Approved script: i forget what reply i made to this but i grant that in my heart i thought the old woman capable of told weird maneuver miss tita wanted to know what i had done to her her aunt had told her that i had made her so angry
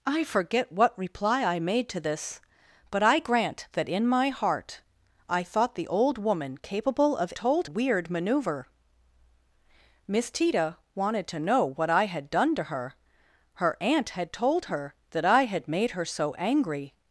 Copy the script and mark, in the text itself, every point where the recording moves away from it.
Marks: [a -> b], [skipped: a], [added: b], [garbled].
i forget what reply i made to this but i grant that in my heart i thought the old woman capable of told weird maneuver miss tita wanted to know what i had done to her her aunt had told her that i had made her so angry